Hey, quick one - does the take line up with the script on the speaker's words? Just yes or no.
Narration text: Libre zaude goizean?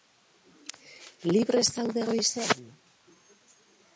yes